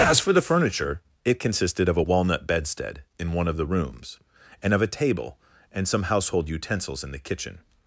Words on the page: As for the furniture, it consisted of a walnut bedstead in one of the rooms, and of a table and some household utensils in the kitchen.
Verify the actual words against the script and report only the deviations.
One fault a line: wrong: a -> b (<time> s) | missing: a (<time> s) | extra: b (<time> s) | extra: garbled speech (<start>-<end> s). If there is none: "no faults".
no faults